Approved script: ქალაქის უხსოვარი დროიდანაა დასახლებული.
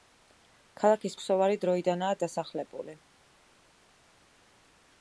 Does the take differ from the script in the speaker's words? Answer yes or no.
no